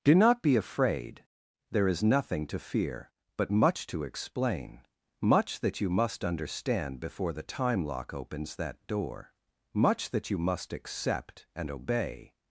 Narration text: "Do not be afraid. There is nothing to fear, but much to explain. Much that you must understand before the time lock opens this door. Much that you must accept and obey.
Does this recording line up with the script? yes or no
no